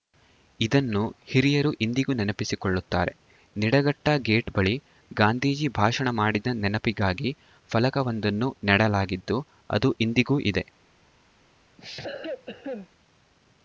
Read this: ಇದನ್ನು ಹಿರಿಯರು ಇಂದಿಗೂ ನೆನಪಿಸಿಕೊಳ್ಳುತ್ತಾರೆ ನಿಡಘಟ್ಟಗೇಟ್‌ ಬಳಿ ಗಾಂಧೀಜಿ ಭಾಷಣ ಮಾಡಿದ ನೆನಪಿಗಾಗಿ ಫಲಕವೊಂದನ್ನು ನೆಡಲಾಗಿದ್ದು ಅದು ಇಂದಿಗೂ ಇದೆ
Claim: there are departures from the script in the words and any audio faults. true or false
true